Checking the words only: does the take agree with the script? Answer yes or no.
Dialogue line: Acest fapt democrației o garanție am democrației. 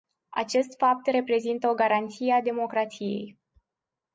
no